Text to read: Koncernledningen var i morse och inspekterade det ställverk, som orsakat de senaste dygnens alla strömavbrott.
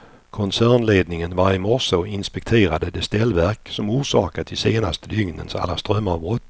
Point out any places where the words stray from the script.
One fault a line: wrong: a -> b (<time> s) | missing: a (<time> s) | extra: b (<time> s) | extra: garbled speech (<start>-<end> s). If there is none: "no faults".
no faults